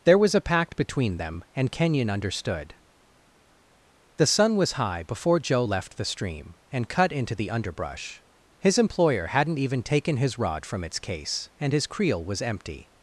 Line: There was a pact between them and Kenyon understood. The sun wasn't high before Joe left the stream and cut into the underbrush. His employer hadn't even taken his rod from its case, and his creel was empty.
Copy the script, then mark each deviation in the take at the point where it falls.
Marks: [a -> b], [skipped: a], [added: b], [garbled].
There was a pact between them and Kenyon understood. The sun [wasn't -> was] high before Joe left the stream and cut into the underbrush. His employer hadn't even taken his rod from its case, and his creel was empty.